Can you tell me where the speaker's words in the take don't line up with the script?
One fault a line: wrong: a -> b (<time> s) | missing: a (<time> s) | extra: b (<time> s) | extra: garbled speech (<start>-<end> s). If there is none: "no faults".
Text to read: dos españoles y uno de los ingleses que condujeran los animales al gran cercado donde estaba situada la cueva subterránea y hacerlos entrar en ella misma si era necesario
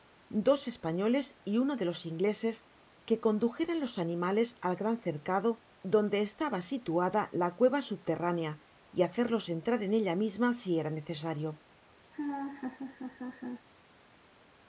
no faults